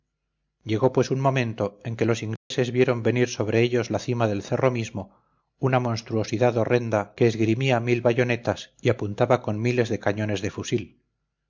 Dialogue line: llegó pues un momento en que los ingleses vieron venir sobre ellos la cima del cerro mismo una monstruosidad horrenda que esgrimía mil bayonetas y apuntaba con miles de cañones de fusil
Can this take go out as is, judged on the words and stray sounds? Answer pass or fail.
fail